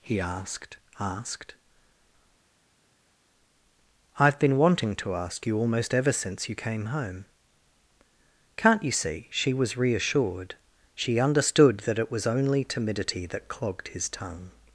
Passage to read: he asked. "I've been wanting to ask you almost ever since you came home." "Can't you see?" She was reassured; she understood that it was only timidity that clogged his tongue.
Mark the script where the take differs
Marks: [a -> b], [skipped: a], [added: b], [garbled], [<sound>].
he asked. [added: asked] "I've been wanting to ask you almost ever since you came home." "Can't you see?" She was reassured; she understood that it was only timidity that clogged his tongue.